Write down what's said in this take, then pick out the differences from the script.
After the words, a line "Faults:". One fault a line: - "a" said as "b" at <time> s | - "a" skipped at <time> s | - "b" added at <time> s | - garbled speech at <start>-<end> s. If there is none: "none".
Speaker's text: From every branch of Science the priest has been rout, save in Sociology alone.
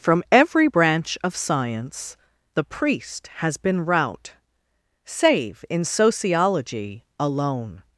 From every branch of Science the priest has been rout, save in Sociology alone.
Faults:
none